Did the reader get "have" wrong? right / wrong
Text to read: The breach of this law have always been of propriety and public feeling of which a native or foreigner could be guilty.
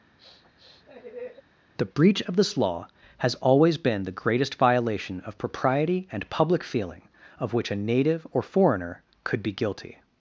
wrong